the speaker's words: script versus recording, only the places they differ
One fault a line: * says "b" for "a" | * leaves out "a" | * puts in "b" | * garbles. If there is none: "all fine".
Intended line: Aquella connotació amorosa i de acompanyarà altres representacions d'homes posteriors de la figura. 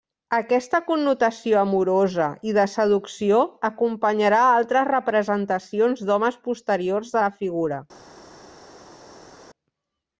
* says "Aquesta" for "Aquella"
* puts in "seducció"